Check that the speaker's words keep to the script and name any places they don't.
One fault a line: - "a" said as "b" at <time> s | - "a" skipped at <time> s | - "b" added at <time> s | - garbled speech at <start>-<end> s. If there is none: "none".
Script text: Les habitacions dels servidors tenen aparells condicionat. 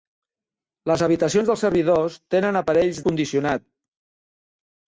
none